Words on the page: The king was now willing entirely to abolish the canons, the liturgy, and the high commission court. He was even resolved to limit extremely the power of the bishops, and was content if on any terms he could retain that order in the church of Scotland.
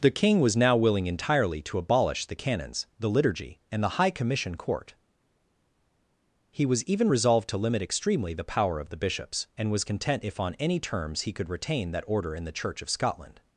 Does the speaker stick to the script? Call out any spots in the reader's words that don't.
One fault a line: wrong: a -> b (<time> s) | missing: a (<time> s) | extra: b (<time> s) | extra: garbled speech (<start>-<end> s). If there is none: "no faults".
no faults